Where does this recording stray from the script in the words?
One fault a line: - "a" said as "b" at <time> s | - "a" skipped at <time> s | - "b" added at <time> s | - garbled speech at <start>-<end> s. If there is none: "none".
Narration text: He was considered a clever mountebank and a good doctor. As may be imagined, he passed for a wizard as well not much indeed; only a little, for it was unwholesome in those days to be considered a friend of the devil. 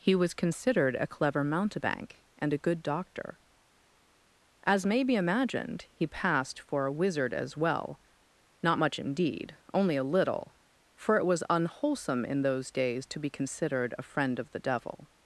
none